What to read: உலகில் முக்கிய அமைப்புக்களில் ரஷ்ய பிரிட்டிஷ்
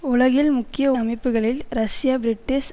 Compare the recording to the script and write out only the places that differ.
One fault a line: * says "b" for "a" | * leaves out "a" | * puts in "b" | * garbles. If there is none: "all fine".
all fine